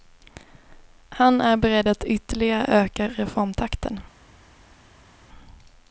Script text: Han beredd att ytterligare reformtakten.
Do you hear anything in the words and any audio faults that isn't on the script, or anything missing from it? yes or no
yes